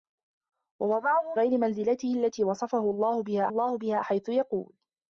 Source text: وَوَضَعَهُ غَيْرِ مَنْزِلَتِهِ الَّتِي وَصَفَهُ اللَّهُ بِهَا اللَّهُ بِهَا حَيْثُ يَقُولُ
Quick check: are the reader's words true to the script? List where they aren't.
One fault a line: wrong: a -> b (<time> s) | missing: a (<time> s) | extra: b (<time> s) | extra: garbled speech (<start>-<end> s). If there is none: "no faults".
no faults